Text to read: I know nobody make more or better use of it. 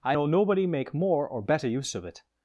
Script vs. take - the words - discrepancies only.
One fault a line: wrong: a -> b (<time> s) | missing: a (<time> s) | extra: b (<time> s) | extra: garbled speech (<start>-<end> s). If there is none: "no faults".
no faults